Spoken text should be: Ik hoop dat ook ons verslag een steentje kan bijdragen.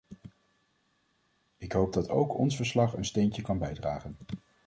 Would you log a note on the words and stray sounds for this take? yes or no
no